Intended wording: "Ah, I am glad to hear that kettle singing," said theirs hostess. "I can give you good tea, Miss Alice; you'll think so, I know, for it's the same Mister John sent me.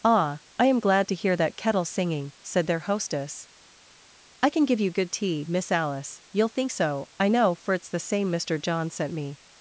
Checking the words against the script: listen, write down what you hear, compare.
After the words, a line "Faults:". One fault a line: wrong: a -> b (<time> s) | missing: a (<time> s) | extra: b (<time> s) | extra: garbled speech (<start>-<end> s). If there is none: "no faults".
"Ah, I am glad to hear that kettle singing," said their hostess. "I can give you good tea, Miss Alice; you'll think so, I know, for it's the same Mister John sent me.
Faults:
wrong: theirs -> their (2.6 s)